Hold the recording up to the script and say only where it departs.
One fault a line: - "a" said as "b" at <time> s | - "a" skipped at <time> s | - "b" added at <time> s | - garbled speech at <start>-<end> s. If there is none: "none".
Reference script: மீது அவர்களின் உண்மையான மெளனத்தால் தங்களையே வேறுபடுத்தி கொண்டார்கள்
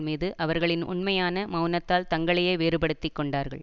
none